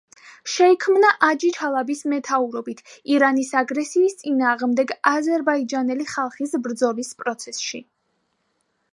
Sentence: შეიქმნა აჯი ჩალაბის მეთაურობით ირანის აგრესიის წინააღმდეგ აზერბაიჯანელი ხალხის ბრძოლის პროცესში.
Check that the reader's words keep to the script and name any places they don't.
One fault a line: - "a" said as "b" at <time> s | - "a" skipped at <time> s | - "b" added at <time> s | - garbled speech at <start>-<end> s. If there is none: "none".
none